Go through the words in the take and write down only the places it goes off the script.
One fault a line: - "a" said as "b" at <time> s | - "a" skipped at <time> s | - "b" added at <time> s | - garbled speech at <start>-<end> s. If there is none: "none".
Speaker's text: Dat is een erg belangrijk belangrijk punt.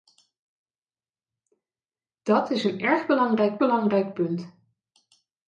none